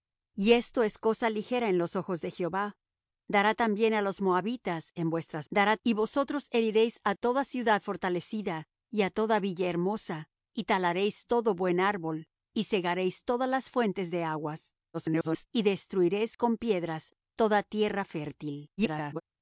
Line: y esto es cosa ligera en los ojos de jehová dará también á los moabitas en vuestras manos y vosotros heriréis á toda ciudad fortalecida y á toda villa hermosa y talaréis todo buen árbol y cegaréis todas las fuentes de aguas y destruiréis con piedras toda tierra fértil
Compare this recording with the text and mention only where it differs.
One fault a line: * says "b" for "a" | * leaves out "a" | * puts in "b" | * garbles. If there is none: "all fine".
* says "dará" for "manos"
* garbles
* garbles